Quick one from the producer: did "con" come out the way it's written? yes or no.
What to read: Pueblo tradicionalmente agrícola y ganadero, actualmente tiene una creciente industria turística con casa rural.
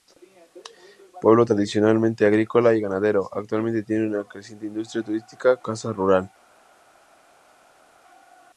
no